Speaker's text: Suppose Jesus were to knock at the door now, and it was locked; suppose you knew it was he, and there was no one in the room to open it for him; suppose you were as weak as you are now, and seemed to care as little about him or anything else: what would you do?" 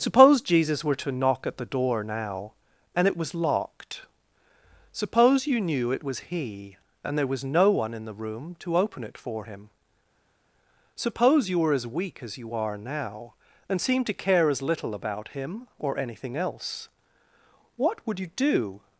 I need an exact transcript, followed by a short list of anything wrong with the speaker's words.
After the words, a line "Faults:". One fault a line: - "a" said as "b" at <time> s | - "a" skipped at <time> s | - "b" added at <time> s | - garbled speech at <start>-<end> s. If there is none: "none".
Suppose Jesus were to knock at the door now, and it was locked; suppose you knew it was he, and there was no one in the room to open it for him; suppose you were as weak as you are now, and seemed to care as little about him or anything else: what would you do?"
Faults:
none